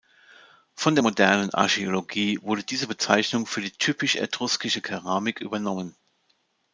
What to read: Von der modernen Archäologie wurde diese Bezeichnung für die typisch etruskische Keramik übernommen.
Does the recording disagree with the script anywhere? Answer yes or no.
no